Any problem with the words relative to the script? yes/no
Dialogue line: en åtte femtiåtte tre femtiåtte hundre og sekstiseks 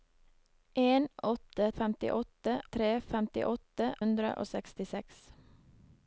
no